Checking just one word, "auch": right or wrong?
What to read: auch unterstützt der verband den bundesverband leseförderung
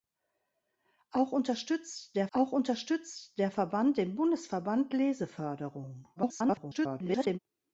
right